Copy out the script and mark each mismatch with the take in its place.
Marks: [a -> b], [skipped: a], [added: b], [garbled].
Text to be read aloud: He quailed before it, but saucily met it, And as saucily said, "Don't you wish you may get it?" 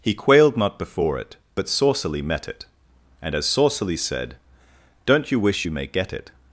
He quailed [added: not] before it, but saucily met it, And as saucily said, "Don't you wish you may get it?"